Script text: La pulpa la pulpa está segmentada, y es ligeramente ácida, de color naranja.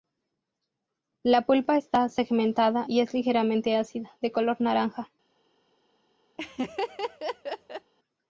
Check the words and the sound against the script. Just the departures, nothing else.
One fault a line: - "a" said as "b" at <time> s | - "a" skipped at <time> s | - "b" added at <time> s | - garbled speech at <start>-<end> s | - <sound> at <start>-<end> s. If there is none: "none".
- "la pulpa" skipped at 1.8 s
- laugh at 6.4-7.9 s